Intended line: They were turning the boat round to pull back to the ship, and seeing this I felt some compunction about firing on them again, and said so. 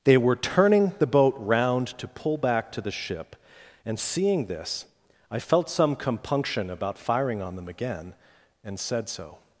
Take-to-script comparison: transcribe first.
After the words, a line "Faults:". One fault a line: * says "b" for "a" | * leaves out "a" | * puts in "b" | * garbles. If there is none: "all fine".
They were turning the boat round to pull back to the ship, and seeing this I felt some compunction about firing on them again, and said so.
Faults:
all fine